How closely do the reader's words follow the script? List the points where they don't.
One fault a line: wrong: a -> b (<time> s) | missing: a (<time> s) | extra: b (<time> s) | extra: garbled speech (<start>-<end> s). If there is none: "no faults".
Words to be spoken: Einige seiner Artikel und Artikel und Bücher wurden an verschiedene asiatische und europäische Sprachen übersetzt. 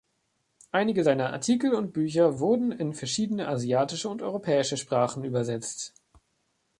missing: Artikel und (1.9 s)
wrong: an -> in (2.7 s)